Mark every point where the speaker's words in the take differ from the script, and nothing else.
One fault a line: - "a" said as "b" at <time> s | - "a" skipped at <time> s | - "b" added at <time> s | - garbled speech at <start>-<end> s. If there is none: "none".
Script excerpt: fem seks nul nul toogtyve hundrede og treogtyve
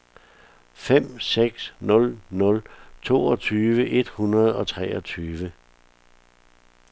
- "et" added at 3.9 s